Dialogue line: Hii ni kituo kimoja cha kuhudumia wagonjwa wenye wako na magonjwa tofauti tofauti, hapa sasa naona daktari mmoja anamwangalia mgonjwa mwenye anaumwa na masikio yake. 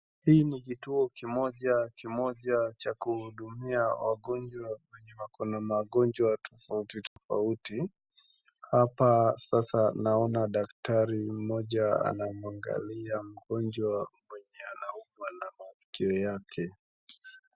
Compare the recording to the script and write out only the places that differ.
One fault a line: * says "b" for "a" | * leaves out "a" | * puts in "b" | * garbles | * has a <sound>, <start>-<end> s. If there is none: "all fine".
* puts in "kimoja"
* has a dropout, 7.1-7.2 s